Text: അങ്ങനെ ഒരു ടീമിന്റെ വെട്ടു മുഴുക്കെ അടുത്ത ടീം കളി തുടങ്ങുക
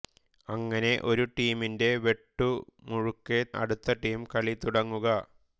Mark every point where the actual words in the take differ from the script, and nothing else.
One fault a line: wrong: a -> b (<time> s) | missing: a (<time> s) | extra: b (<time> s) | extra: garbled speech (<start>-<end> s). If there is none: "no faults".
no faults